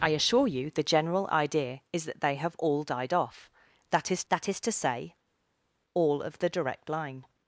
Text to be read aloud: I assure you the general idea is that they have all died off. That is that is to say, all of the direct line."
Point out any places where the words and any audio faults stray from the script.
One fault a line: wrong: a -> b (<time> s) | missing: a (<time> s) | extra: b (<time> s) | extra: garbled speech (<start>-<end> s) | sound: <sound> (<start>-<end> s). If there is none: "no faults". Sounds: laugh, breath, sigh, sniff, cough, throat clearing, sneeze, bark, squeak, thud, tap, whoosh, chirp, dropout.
no faults